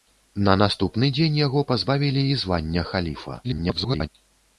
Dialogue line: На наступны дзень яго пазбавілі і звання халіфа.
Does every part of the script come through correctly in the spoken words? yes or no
no